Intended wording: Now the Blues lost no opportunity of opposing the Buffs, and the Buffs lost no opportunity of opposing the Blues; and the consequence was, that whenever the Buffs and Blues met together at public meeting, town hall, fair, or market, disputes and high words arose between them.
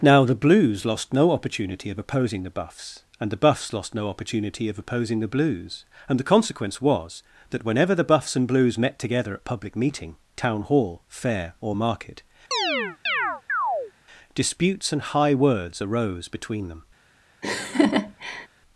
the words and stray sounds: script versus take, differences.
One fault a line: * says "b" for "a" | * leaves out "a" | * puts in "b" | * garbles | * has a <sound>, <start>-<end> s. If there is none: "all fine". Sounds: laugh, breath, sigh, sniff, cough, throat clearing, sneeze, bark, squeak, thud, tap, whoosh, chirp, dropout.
* has a chirp, 12.5-13.9 s
* has a laugh, 17.4-18.5 s